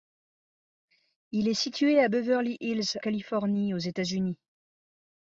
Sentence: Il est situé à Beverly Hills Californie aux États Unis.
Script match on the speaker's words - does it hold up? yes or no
yes